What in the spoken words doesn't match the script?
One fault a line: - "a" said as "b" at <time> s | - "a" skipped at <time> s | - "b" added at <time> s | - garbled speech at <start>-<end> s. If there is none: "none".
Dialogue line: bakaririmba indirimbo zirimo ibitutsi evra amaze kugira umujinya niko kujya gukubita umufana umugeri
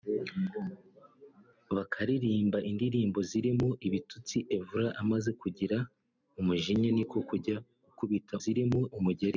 - "umufana" said as "zirimo" at 8.4 s